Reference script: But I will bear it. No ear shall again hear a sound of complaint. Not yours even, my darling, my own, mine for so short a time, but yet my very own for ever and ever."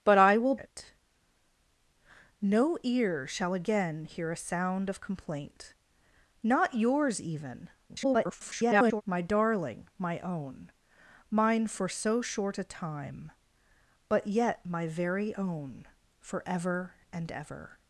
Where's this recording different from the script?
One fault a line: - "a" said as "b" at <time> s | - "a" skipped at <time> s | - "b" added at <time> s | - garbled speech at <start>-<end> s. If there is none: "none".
- "bear" skipped at 0.6 s
- garbled speech at 7.9-9.0 s